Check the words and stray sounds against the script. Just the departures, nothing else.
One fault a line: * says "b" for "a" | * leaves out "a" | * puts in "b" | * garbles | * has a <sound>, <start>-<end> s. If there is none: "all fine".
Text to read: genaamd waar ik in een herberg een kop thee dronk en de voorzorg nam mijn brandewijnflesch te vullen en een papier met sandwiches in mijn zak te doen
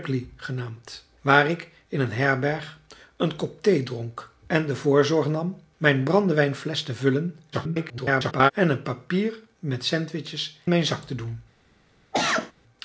* garbles
* leaves out "in"
* has a cough, 12.1-12.5 s